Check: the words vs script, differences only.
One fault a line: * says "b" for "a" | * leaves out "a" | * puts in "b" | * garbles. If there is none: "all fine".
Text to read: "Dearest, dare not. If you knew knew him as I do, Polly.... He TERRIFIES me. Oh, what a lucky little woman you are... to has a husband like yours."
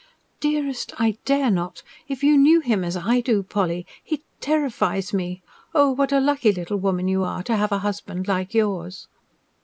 * puts in "I"
* leaves out "knew"
* says "have" for "has"